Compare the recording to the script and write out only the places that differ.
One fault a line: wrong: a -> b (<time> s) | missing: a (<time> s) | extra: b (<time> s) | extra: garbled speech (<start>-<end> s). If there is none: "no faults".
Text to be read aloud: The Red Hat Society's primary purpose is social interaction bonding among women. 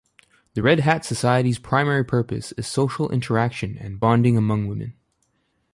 extra: and (3.8 s)